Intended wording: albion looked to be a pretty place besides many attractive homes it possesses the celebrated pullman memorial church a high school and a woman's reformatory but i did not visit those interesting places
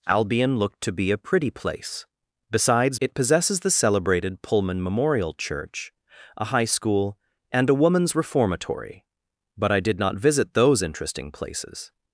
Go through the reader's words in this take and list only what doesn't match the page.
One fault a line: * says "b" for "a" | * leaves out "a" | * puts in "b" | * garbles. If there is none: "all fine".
* leaves out "many attractive homes"